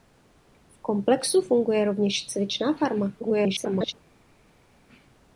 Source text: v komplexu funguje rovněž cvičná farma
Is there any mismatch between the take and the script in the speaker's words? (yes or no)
yes